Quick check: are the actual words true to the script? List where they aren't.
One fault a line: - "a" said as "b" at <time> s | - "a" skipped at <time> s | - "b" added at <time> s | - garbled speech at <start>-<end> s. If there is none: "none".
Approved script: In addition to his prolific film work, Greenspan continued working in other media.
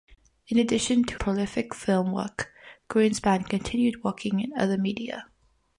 - "his" skipped at 1.2 s